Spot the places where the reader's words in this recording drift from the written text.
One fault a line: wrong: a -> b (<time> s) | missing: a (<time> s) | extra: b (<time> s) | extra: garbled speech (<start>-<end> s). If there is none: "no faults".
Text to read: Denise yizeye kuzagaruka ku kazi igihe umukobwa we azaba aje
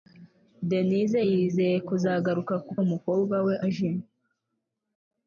missing: kazi igihe (2.7 s)
missing: azaba (3.5 s)